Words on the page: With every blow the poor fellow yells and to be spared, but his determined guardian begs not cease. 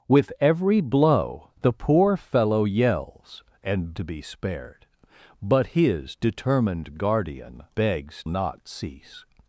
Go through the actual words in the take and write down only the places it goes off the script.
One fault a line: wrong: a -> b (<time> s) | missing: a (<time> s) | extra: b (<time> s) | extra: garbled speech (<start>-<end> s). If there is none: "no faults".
no faults